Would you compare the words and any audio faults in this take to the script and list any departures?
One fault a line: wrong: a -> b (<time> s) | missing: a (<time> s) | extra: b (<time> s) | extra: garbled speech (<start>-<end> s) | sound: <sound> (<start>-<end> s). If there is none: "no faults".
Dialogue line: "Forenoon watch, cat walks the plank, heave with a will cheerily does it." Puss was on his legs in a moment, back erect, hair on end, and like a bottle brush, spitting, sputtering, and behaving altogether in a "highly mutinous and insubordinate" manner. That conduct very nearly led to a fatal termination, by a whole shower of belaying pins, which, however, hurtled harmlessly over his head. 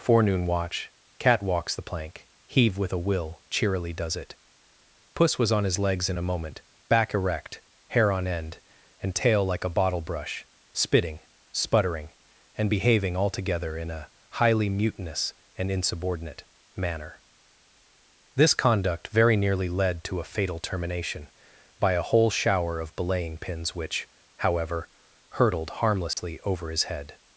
extra: tail (9.1 s)
wrong: That -> This (18.4 s)
sound: dropout (26.1-26.2 s)